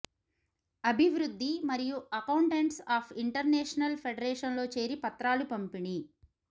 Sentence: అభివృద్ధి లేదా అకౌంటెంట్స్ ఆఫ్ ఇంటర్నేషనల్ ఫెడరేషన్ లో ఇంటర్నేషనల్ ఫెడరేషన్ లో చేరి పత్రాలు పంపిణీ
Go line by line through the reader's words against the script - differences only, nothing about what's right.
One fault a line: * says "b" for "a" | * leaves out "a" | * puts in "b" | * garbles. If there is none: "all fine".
* says "మరియు" for "లేదా"
* leaves out "ఇంటర్నేషనల్ ఫెడరేషన్ లో"